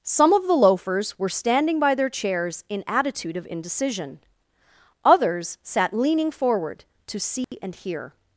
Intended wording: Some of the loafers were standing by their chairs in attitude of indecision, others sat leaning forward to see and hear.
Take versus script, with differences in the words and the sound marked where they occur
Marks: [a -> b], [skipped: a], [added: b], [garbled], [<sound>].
Some of the loafers were standing by their chairs in attitude of indecision, others sat leaning forward to see [dropout] and hear.